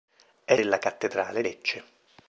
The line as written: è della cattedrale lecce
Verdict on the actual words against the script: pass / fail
pass